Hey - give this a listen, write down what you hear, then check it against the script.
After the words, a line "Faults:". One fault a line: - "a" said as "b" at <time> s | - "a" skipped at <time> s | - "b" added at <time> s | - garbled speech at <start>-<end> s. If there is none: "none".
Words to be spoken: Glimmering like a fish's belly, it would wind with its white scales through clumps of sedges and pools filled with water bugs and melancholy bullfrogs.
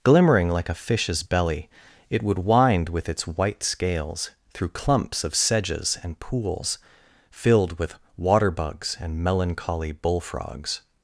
Glimmering like a fish's belly, it would wind with its white scales through clumps of sedges and pools filled with water bugs and melancholy bullfrogs.
Faults:
none